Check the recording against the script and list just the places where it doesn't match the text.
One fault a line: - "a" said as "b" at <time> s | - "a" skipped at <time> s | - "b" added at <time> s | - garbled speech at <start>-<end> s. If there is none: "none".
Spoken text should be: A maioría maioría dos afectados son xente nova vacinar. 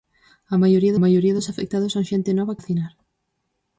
none